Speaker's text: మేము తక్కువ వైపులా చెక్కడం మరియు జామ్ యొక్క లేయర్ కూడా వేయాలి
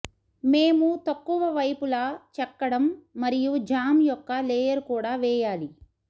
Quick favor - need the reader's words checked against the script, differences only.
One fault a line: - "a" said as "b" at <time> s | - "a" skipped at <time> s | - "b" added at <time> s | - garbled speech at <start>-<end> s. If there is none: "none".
none